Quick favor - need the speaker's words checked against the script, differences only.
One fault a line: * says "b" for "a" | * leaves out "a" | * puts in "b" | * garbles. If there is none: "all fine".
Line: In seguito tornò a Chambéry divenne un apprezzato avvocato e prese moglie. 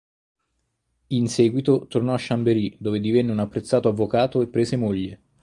* puts in "dove"